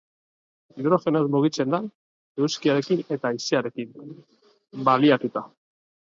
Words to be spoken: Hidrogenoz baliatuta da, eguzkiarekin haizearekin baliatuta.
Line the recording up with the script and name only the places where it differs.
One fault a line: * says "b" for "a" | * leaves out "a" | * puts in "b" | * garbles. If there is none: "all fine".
* says "mugitzen" for "baliatuta"
* puts in "eta"